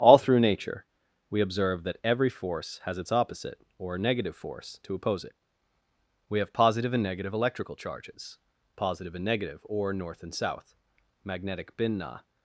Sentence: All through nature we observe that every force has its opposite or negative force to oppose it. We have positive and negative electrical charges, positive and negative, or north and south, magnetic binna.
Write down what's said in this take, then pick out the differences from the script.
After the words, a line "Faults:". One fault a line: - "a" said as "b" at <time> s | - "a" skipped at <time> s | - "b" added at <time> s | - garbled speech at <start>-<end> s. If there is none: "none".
All through nature we observe that every force has its opposite or negative force to oppose it. We have positive and negative electrical charges, positive and negative, or north and south, magnetic binna.
Faults:
none